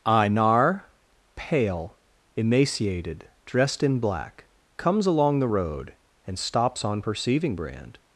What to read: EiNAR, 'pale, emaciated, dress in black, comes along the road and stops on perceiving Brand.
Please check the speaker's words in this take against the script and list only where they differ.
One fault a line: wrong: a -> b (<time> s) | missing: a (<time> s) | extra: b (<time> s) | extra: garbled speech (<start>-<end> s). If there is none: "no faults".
wrong: dress -> dressed (3.5 s)